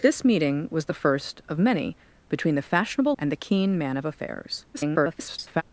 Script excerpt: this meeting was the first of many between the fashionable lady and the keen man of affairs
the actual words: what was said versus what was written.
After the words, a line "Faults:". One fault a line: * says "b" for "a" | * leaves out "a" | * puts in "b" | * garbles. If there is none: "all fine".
this meeting was the first of many between the fashionable and the keen man of affairs [garbled]
Faults:
* leaves out "lady"
* garbles